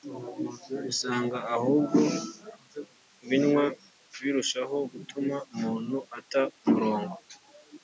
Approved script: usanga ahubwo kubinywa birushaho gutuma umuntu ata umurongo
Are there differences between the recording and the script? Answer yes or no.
no